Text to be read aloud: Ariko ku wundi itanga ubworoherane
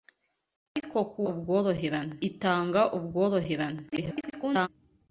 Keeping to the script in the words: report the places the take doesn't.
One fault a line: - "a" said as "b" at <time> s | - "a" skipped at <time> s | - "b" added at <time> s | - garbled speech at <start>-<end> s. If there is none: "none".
- "wundi" said as "ubworoherane" at 1.3 s
- garbled speech at 3.9-4.7 s